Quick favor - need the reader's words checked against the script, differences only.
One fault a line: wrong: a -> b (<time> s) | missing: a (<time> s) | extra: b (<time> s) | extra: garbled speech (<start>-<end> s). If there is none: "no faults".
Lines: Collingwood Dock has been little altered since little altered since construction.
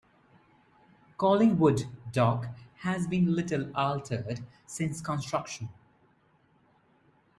missing: little altered since (5.0 s)